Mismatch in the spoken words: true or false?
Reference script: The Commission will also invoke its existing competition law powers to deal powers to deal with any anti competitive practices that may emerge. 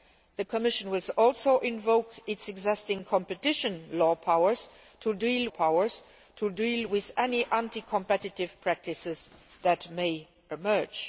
false